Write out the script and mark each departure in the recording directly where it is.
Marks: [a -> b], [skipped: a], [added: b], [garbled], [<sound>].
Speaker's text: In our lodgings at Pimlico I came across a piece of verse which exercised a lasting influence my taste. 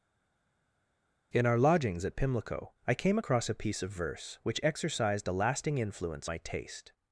In our lodgings at Pimlico I came across a piece of verse which exercised a lasting influence my taste.